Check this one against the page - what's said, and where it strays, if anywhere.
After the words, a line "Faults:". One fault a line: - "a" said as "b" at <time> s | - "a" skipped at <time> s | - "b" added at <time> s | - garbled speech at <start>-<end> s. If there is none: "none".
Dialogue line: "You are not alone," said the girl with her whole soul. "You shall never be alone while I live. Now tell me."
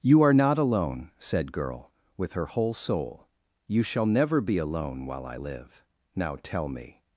"You are not alone," said girl with her whole soul. "You shall never be alone while I live. Now tell me."
Faults:
- "the" skipped at 1.5 s